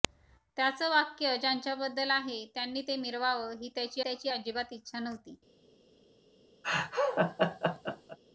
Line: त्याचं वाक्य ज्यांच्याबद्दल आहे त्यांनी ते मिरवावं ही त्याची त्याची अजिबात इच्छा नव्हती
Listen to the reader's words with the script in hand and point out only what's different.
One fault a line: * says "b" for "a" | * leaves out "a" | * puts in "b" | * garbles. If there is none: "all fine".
all fine